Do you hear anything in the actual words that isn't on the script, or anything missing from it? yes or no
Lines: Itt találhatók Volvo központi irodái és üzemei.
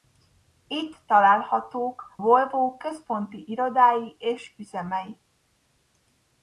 no